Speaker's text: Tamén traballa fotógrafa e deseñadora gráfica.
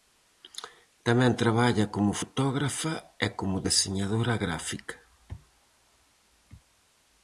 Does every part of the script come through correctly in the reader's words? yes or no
no